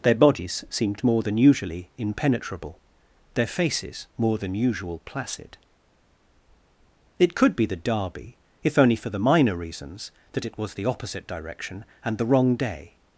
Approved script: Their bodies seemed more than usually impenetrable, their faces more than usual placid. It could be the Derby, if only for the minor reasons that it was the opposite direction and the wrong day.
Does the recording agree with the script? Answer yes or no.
yes